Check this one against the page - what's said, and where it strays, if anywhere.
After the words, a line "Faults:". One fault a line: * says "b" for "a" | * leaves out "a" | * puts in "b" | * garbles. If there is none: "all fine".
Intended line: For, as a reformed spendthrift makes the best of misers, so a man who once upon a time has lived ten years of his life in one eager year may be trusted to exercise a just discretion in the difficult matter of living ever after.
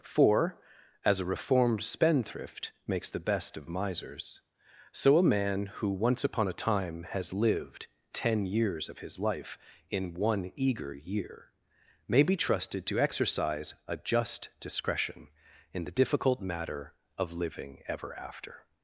For, as a reformed spendthrift makes the best of misers, so a man who once upon a time has lived ten years of his life in one eager year may be trusted to exercise a just discretion in the difficult matter of living ever after.
Faults:
all fine